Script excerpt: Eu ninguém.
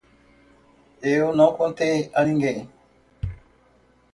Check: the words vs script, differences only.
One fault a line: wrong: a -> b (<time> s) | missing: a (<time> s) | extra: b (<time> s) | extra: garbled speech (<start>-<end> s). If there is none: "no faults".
extra: não contei a (1.4 s)